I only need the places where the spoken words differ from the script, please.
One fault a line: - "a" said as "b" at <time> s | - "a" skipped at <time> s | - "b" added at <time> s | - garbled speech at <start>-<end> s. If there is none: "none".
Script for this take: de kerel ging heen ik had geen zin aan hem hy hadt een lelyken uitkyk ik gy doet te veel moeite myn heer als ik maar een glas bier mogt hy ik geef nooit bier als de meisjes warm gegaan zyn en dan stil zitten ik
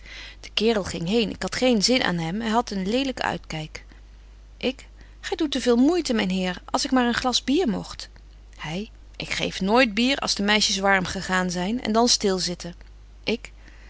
none